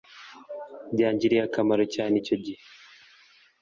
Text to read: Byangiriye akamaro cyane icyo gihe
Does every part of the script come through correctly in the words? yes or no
yes